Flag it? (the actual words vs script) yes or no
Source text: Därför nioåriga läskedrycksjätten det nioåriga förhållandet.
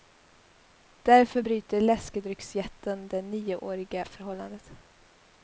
yes